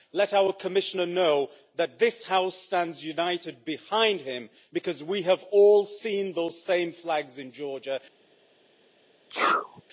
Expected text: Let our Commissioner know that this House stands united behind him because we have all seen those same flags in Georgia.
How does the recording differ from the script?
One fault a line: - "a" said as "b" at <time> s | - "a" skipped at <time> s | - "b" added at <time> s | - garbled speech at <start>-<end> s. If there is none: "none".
none